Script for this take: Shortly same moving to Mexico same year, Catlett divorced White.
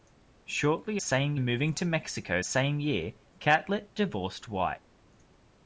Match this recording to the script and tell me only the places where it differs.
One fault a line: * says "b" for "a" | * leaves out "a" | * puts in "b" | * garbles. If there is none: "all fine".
all fine